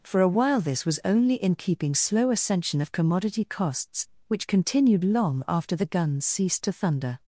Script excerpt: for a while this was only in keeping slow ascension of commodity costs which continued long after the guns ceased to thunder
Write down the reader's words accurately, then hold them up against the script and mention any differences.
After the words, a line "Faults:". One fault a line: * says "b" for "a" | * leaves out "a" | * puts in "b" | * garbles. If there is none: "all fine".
for a while this was only in keeping slow ascension of commodity costs which continued long after the guns ceased to thunder
Faults:
all fine